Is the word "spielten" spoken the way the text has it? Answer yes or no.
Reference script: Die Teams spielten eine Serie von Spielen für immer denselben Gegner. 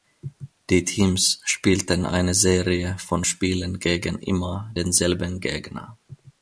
yes